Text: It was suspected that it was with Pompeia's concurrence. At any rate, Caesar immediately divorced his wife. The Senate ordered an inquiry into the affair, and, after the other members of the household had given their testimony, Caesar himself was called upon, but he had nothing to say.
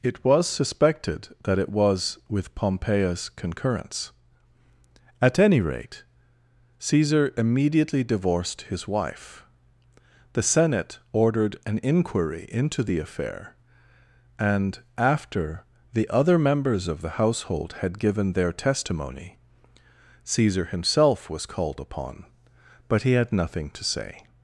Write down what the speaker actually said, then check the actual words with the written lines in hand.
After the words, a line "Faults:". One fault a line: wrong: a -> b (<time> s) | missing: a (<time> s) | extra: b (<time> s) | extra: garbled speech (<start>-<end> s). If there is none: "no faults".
It was suspected that it was with Pompeia's concurrence. At any rate, Caesar immediately divorced his wife. The Senate ordered an inquiry into the affair, and, after the other members of the household had given their testimony, Caesar himself was called upon, but he had nothing to say.
Faults:
no faults